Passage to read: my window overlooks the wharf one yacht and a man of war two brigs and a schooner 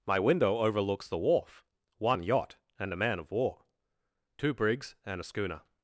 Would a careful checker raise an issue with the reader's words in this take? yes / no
no